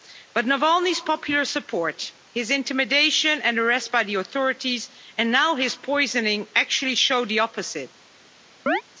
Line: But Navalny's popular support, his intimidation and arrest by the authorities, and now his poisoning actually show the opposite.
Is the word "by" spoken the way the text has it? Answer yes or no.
yes